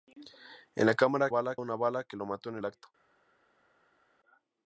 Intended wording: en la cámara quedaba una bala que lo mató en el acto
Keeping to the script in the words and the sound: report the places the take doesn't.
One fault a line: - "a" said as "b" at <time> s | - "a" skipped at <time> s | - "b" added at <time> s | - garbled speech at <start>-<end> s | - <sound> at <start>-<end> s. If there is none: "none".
- "quedaba" said as "bala" at 1.3 s
- "el" skipped at 2.6 s